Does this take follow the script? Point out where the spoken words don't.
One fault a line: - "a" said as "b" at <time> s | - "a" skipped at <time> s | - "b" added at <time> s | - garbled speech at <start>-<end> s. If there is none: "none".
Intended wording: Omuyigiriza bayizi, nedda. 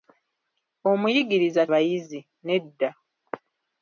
none